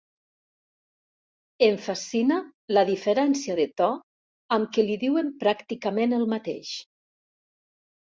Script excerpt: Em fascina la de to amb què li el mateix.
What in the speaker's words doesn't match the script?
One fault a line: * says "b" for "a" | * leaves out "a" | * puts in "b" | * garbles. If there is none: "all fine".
* puts in "diferència"
* puts in "diuen pràcticament"